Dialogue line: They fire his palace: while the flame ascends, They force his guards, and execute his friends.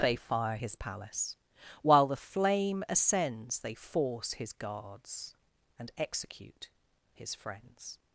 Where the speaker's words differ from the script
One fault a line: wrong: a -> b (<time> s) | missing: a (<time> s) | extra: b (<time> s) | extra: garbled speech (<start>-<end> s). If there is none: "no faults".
no faults